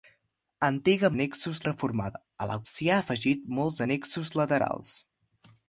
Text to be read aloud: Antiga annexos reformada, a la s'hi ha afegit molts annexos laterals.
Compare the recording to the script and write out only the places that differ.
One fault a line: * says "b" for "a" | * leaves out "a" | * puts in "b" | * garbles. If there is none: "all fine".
all fine